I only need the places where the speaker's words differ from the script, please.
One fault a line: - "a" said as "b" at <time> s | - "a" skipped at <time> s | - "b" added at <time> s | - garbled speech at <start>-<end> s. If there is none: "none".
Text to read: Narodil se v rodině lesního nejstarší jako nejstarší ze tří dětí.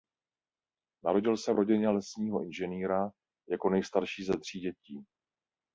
- "nejstarší" said as "inženýra" at 2.4 s